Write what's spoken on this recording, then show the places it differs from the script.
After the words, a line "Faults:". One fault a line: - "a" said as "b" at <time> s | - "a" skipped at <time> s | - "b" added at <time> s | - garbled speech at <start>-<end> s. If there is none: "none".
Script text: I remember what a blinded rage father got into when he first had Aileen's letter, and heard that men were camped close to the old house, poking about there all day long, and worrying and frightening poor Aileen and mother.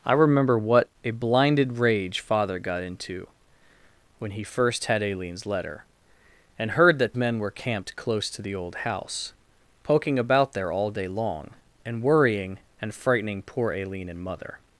I remember what a blinded rage father got into when he first had Aileen's letter, and heard that men were camped close to the old house, poking about there all day long, and worrying and frightening poor Aileen and mother.
Faults:
none